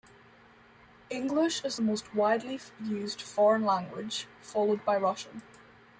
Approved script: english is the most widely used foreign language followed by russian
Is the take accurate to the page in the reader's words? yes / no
yes